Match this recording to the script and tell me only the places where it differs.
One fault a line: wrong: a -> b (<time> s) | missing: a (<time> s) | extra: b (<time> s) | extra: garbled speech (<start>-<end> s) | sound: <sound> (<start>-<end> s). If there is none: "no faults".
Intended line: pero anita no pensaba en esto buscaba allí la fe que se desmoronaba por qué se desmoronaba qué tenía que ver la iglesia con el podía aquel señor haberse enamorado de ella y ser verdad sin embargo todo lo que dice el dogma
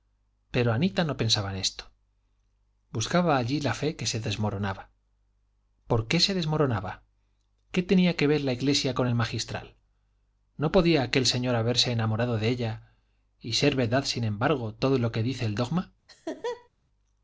extra: magistral no (9.2 s)
sound: laugh (16.1-16.7 s)